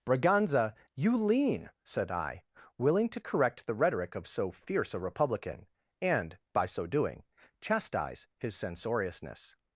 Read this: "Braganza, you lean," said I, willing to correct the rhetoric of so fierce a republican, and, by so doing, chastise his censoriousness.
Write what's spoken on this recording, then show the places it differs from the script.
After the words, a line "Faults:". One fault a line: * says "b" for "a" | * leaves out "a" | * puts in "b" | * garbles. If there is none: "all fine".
"Braganza, you lean," said I, willing to correct the rhetoric of so fierce a republican, and, by so doing, chastise his censoriousness.
Faults:
all fine